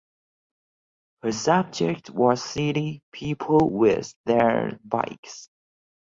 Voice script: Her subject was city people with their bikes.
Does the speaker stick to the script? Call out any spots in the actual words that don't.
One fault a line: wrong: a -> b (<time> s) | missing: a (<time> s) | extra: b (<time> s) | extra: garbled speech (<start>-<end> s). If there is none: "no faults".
no faults